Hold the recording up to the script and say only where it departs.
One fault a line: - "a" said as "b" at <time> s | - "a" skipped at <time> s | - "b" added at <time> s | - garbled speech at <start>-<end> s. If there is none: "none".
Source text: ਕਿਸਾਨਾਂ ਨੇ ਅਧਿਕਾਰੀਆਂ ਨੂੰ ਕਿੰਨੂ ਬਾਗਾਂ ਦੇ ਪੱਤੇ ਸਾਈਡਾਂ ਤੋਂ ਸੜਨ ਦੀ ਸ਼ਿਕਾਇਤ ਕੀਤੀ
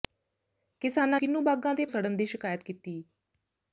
- "ਨੇ ਅਧਿਕਾਰੀਆਂ ਨੂੰ" skipped at 1.2 s
- "ਪੱਤੇ ਸਾਈਡਾਂ ਤੋਂ" skipped at 1.9 s